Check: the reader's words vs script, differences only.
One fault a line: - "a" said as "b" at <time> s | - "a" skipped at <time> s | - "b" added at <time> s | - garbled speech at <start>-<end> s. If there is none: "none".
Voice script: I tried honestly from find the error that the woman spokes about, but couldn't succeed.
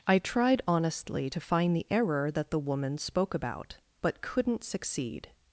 - "from" said as "to" at 1.3 s
- "spokes" said as "spoke" at 3.0 s